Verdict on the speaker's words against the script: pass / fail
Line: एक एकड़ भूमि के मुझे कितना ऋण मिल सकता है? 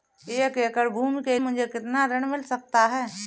pass